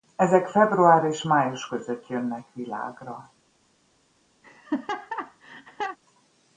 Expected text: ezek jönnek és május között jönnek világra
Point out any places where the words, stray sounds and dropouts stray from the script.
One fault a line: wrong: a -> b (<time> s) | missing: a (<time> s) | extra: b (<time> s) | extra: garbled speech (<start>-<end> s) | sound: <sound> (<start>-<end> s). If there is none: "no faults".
wrong: jönnek -> február (0.5 s)
sound: laugh (4.4-6.0 s)